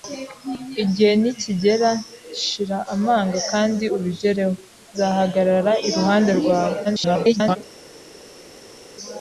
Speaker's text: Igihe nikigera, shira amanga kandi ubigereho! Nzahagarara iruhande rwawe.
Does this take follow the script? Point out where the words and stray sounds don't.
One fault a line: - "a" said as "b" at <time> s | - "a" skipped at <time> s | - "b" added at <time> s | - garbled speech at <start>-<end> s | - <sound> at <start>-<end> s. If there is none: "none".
- garbled speech at 6.8-7.6 s